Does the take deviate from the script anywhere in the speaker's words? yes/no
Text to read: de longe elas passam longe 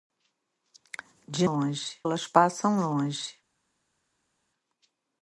no